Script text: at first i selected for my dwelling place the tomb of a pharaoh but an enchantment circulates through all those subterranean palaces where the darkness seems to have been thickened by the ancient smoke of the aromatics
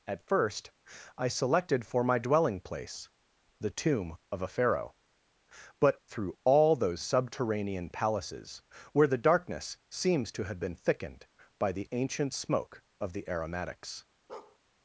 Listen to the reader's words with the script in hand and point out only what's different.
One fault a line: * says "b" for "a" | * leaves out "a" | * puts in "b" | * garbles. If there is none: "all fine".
* leaves out "an enchantment circulates"